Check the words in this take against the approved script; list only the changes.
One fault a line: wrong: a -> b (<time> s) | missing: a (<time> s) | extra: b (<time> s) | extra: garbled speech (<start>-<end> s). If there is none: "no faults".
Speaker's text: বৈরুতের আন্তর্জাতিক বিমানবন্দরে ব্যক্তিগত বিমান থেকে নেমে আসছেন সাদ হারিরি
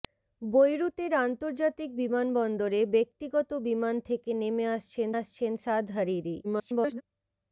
extra: আসছেন (5.2 s)
extra: garbled speech (6.4-7.0 s)